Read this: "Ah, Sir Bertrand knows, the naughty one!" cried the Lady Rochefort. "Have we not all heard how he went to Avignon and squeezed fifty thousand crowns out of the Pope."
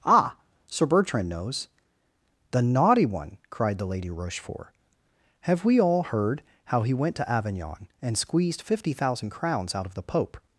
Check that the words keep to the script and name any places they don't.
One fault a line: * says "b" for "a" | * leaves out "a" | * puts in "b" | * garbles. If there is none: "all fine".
* leaves out "not"